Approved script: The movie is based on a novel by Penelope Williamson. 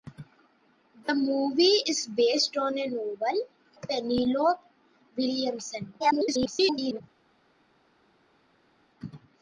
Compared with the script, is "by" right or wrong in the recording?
wrong